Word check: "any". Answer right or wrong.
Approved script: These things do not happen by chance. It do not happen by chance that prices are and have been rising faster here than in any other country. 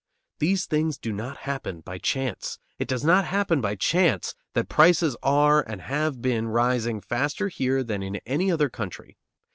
right